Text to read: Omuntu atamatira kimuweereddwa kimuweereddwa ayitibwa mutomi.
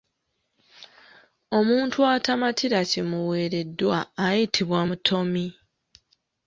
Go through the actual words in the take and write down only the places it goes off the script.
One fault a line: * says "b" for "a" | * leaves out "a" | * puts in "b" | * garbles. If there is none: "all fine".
* leaves out "kimuweereddwa"